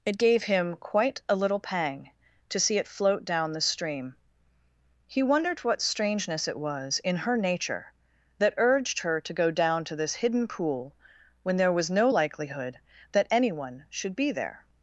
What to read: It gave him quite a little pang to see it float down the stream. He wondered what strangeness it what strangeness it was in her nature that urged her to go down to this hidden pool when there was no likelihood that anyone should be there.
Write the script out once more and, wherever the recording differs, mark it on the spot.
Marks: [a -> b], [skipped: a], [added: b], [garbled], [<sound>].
It gave him quite a little pang to see it float down the stream. He wondered what strangeness it [skipped: what strangeness it] was in her nature that urged her to go down to this hidden pool when there was no likelihood that anyone should be there.